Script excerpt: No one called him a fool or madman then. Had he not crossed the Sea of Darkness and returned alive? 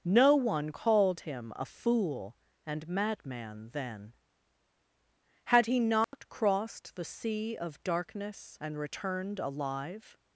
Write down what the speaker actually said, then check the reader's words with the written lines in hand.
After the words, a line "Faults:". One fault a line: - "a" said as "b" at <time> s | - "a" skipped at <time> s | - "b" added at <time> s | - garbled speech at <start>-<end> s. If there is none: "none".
No one called him a fool and madman then. Had he not crossed the Sea of Darkness and returned alive?
Faults:
- "or" said as "and" at 2.6 s